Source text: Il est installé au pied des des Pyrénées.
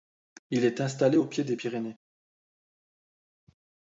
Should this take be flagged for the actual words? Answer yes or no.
yes